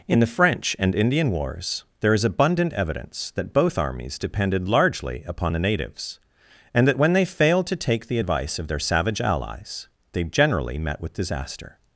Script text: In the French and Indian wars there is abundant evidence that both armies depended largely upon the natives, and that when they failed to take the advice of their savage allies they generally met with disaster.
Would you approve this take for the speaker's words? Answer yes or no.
yes